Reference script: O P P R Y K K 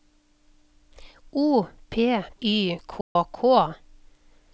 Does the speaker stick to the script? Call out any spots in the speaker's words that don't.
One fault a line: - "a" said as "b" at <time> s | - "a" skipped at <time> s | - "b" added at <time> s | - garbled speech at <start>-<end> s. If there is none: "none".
- "P R" skipped at 2.2 s